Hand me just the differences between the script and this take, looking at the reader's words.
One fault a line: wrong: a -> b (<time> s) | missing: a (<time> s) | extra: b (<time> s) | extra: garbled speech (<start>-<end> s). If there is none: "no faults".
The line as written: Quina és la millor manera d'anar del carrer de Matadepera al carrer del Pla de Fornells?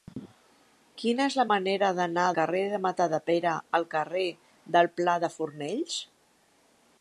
missing: millor (1.4 s)
missing: del (2.3 s)